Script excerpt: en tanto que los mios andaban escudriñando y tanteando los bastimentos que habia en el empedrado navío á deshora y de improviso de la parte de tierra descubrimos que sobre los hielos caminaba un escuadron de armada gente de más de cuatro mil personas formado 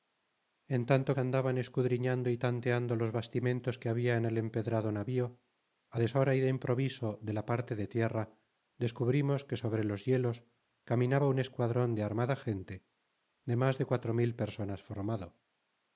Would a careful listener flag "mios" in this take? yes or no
yes